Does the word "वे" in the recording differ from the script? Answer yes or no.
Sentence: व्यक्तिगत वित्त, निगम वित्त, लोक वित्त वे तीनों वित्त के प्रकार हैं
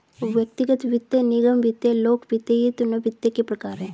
yes